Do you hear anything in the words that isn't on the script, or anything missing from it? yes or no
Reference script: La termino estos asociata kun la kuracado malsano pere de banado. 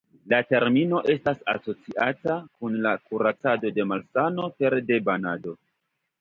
yes